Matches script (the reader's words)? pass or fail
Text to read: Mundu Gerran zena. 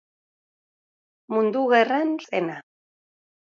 pass